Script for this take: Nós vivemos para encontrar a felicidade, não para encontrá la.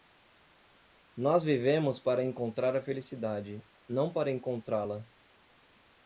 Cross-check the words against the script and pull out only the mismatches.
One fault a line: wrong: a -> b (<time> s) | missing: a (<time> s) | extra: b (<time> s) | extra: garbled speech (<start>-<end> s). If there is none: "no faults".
no faults